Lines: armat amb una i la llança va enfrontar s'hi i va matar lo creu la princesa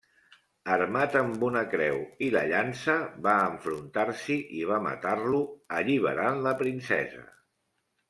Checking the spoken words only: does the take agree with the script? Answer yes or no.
no